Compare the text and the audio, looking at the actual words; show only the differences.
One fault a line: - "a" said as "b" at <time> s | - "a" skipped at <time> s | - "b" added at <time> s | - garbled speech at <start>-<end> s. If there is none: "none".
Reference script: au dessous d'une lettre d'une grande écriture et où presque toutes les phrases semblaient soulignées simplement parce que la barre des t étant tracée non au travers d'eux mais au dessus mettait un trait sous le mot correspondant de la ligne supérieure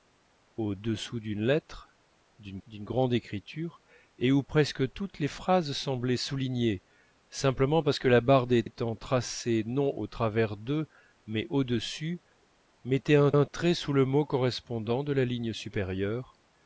- "d'une" added at 2.7 s
- "t" skipped at 8.6 s
- "un" added at 13.3 s